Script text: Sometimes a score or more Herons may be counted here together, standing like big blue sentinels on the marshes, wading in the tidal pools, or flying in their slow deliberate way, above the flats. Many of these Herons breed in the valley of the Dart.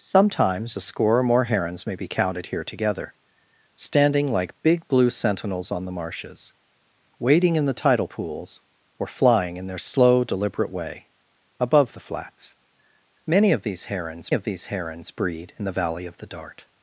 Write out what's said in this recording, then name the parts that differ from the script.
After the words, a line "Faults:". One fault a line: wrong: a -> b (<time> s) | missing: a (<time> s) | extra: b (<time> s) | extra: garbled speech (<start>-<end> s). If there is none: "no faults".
Sometimes a score or more Herons may be counted here together, standing like big blue sentinels on the marshes, wading in the tidal pools, or flying in their slow deliberate way, above the flats. Many of these Herons of these Herons breed in the valley of the Dart.
Faults:
extra: of these Herons (14.3 s)